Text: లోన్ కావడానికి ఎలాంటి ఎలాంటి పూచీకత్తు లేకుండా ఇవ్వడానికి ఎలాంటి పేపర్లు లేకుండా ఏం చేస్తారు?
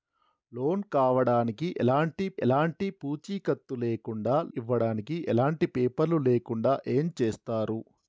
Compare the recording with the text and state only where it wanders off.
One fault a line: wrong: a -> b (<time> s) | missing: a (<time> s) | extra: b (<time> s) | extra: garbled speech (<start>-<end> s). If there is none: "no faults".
no faults